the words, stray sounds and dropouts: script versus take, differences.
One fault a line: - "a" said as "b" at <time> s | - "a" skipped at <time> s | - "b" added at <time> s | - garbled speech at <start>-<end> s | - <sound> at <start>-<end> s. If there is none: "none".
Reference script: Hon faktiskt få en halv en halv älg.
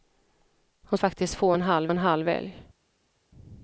none